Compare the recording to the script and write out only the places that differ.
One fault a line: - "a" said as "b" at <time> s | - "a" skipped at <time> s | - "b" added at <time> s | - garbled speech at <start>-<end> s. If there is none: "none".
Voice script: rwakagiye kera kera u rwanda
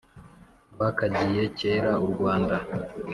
- "kera" skipped at 1.9 s